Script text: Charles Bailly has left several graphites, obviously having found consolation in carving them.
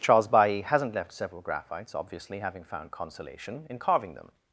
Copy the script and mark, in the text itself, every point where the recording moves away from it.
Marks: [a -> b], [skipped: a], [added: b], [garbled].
Charles Bailly [has -> hasn't] left several graphites, obviously having found consolation in carving them.